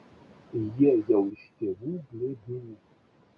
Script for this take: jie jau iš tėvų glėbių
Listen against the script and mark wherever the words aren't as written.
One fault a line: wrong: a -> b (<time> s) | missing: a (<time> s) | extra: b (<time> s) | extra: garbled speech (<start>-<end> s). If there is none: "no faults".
no faults